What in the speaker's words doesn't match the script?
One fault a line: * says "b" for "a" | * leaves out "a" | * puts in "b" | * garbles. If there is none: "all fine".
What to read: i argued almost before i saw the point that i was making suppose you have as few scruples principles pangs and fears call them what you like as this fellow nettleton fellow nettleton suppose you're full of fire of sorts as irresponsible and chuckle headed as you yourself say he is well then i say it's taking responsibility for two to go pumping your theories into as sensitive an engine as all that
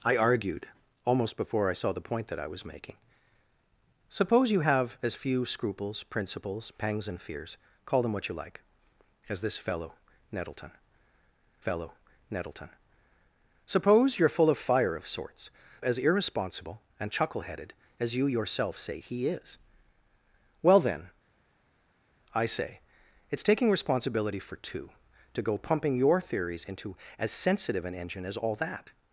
all fine